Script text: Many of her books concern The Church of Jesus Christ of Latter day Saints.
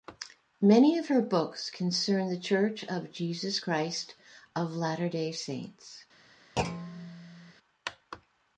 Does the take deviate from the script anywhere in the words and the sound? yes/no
yes